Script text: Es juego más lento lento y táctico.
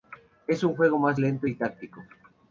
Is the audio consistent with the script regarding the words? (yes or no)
no